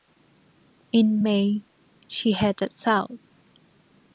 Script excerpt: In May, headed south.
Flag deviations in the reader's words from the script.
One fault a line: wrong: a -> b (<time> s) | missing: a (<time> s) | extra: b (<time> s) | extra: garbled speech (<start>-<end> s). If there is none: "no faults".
extra: she (2.1 s)